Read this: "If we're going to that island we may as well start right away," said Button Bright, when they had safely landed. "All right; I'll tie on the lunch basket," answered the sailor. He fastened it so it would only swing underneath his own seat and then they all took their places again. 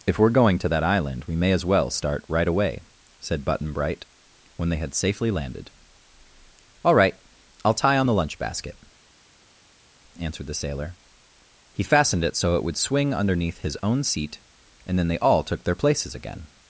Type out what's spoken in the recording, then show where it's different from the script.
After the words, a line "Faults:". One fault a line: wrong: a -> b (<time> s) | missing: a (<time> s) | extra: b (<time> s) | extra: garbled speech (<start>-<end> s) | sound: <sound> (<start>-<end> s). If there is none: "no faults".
"If we're going to that island we may as well start right away," said Button Bright, when they had safely landed. "All right; I'll tie on the lunch basket," answered the sailor. He fastened it so it would swing underneath his own seat and then they all took their places again.
Faults:
missing: only (12.8 s)